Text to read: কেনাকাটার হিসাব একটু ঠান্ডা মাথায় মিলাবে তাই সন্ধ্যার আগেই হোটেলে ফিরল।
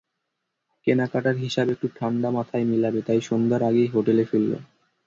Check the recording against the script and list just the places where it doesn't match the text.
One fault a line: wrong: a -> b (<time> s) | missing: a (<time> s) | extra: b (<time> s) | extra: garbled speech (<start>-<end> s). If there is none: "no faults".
no faults